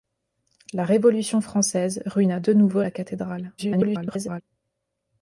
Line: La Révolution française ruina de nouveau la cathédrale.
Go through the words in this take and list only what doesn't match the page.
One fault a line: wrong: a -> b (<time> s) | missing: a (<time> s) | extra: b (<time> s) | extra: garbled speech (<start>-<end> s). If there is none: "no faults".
extra: garbled speech (3.6-4.4 s)